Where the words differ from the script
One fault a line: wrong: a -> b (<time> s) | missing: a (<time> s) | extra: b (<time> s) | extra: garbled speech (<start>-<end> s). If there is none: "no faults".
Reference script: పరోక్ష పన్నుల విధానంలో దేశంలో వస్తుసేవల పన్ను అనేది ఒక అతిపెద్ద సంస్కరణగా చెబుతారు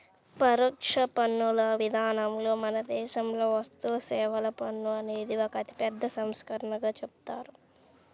extra: మన (2.6 s)